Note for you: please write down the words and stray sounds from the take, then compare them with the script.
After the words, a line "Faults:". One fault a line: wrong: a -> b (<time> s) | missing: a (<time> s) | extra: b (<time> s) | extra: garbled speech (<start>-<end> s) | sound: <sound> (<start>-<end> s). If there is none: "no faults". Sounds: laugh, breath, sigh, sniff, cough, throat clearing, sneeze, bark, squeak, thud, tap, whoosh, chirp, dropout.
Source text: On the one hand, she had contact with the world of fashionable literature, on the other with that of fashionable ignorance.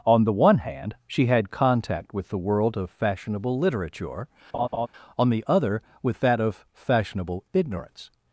On the one hand, she had contact with the world of fashionable literature, on the other with that of fashionable ignorance.
Faults:
sound: laugh (4.5-4.9 s)